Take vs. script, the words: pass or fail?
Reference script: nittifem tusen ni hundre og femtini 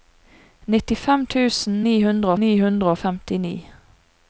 fail